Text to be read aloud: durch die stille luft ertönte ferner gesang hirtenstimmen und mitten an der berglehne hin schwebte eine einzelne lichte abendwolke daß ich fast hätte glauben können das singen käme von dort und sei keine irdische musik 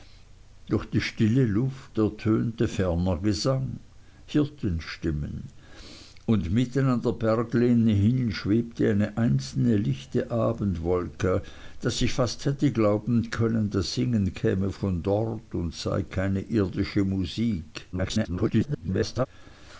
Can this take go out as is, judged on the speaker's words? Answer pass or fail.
fail